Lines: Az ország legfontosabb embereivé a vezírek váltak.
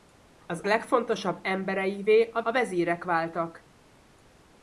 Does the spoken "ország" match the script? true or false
false